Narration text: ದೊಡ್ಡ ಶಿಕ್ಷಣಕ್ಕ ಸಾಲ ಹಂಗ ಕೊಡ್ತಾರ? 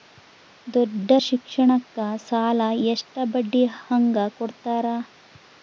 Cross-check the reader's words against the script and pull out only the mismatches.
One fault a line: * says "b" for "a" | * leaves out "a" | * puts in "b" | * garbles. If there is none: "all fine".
* puts in "ಎಷ್ಟ ಬಡ್ಡಿ"